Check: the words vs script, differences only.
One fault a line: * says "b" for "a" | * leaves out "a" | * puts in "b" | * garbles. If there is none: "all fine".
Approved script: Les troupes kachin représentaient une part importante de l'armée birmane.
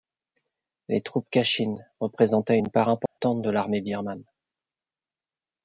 all fine